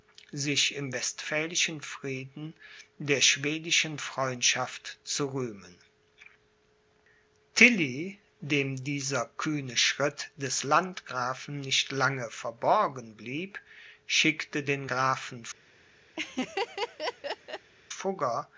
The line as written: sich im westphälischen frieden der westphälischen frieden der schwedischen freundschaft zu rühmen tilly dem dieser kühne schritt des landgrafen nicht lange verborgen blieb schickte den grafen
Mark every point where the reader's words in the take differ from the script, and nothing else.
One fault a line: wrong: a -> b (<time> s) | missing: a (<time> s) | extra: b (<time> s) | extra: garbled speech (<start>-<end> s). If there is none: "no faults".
missing: westphälischen frieden der (3.2 s)